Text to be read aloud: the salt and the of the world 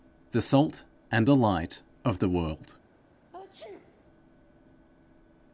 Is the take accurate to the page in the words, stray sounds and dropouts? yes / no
no